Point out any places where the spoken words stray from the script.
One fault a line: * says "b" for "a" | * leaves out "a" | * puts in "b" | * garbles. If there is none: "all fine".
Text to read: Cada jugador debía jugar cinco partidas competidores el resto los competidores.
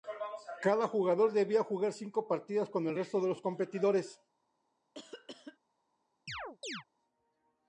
* says "con" for "competidores"
* puts in "de"